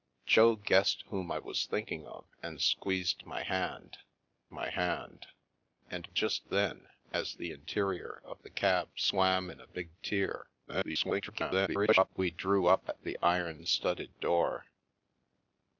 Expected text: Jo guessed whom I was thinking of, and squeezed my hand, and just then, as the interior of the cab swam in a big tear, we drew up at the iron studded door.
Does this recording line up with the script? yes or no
no